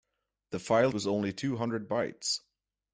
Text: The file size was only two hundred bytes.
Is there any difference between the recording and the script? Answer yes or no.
yes